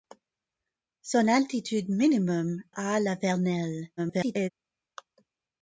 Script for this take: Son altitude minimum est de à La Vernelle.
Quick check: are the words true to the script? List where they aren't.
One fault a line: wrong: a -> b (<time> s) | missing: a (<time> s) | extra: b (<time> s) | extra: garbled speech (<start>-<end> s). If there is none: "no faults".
missing: est de (2.6 s)
extra: garbled speech (4.0-4.5 s)